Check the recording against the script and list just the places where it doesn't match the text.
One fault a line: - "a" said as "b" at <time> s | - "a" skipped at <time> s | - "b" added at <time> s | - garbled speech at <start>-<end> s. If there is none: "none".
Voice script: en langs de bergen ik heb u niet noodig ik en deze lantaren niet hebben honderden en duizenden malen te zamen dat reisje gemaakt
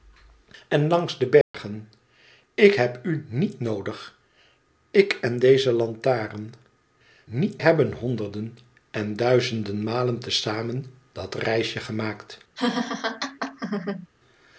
none